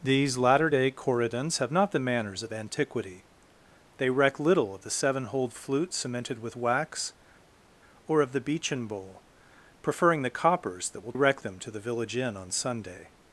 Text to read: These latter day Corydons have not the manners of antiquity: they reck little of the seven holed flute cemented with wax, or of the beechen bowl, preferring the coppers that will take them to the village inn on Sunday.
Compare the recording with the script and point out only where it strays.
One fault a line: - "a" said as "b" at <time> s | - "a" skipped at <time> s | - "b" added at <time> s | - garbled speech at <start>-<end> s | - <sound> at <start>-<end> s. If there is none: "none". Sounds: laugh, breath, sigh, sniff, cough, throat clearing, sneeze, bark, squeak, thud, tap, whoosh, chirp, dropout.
- "take" said as "reck" at 11.1 s